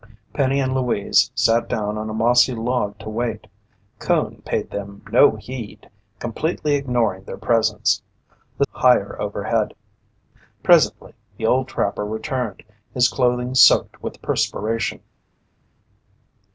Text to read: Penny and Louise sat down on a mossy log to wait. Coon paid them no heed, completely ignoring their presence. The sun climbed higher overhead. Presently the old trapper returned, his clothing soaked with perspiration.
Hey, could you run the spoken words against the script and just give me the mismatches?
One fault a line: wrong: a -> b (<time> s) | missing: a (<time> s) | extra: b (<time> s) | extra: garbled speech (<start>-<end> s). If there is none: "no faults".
missing: sun climbed (8.6 s)